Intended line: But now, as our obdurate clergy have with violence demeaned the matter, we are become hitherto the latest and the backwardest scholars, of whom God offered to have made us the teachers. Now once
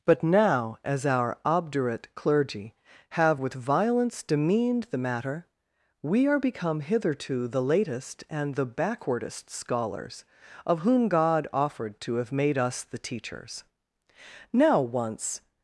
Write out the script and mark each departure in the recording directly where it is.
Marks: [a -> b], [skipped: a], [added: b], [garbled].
But now, as our obdurate clergy have with violence demeaned the matter, we are become hitherto the latest and the backwardest scholars, of whom God offered to have made us the teachers. Now once